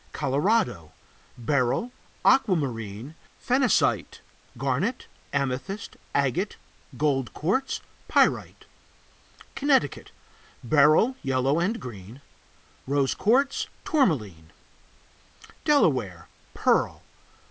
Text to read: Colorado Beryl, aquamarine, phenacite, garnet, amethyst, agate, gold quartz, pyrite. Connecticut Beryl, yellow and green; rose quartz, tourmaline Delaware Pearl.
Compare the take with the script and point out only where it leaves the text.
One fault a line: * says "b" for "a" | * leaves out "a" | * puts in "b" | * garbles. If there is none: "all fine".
all fine